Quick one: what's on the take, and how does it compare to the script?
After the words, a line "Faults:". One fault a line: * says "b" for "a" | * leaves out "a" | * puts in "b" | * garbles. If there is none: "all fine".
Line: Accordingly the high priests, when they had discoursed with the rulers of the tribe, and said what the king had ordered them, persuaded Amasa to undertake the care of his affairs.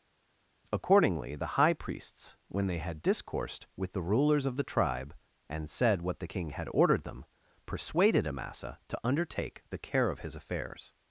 Accordingly the high priests, when they had discoursed with the rulers of the tribe, and said what the king had ordered them, persuaded Amasa to undertake the care of his affairs.
Faults:
all fine